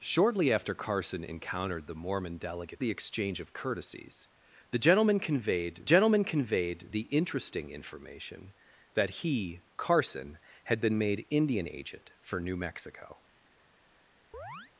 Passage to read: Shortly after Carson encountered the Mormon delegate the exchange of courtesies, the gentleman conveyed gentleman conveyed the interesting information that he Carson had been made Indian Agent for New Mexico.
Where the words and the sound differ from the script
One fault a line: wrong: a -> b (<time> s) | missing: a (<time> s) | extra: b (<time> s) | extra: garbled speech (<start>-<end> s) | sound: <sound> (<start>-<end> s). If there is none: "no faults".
sound: chirp (14.3-14.7 s)